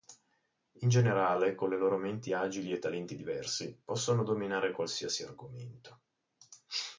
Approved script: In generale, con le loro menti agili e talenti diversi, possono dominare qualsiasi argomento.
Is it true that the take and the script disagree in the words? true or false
false